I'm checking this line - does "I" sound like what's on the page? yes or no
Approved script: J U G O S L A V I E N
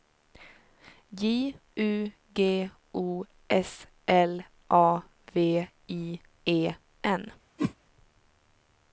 yes